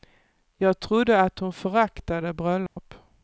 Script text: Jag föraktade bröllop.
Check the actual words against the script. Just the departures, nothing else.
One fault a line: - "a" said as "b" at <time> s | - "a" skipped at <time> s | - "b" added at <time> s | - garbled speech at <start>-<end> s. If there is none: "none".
- "trodde att hon" added at 0.8 s